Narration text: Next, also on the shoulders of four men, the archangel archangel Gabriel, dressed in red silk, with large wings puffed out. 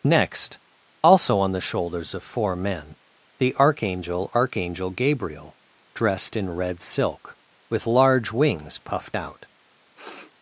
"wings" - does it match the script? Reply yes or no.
yes